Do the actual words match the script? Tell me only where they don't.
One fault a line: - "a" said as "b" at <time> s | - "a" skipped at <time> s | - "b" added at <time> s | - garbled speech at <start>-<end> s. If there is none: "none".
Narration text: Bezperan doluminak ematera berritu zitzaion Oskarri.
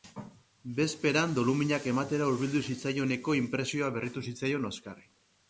- "hurbildu zitzaioneko inpresioa" added at 2.3 s